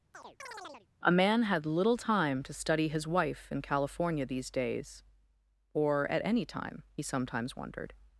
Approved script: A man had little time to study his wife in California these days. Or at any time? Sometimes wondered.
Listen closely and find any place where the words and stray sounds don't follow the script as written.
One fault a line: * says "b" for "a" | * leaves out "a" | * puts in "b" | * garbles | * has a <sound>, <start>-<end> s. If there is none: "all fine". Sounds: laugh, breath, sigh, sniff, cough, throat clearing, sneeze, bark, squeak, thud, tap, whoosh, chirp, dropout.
* has a chirp, 0.1-0.9 s